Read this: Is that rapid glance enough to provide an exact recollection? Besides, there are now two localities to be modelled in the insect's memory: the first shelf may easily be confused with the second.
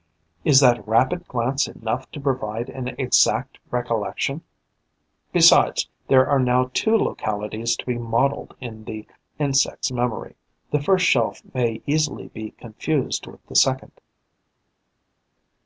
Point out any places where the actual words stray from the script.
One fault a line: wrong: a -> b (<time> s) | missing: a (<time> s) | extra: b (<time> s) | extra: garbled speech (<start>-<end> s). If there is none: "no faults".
no faults